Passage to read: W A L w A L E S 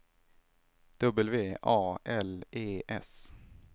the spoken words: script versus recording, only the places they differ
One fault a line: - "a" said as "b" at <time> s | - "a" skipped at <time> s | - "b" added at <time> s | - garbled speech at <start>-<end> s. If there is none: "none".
- "w A L" skipped at 2.4 s